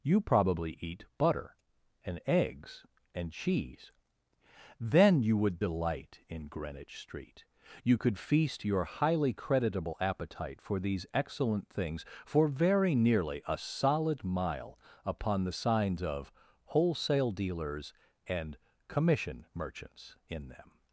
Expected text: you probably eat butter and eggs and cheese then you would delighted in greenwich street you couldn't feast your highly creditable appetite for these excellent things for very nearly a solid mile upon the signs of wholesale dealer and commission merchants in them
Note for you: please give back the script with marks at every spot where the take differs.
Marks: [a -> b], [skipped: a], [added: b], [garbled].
you probably eat butter and eggs and cheese then you would [delighted -> delight] in greenwich street you [couldn't -> could] feast your highly creditable appetite for these excellent things for very nearly a solid mile upon the signs of wholesale [dealer -> dealers] and commission merchants in them